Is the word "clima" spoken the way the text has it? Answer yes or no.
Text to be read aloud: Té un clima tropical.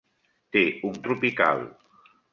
no